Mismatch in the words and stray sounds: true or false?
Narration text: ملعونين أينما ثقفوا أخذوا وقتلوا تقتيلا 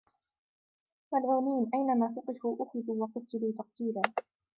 false